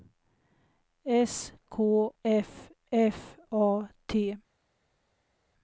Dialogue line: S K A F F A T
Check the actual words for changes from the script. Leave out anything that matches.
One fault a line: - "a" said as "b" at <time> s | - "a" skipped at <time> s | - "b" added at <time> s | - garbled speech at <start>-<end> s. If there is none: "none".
- "A" skipped at 2.1 s